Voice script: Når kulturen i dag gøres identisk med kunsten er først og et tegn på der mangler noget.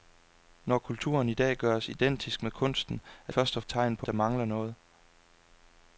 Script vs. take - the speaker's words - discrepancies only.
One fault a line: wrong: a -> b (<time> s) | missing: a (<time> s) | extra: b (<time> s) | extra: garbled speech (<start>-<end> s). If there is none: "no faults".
no faults